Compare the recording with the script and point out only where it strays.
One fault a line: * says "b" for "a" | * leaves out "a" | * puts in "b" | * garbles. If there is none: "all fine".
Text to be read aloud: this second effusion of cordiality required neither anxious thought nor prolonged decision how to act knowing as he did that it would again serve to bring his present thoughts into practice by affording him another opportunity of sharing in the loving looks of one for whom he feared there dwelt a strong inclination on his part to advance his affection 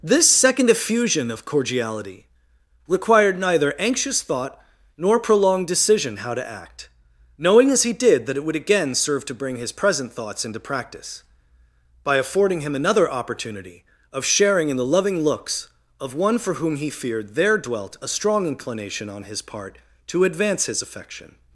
all fine